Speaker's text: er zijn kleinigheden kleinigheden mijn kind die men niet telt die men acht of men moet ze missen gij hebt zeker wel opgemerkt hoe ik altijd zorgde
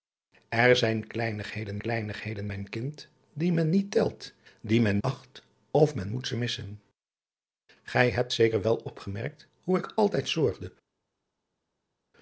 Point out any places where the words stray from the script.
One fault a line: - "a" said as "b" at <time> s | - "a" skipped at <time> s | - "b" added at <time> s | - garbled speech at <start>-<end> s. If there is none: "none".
none